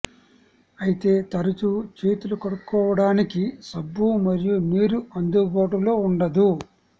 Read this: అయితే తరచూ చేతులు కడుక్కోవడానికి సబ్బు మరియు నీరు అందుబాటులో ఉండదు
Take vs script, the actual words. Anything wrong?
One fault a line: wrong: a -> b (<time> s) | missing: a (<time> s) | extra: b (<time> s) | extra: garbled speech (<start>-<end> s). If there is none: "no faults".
no faults